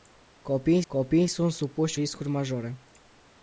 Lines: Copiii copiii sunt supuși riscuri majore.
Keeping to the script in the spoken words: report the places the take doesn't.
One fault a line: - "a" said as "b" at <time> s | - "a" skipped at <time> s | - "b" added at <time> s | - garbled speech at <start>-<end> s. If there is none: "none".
none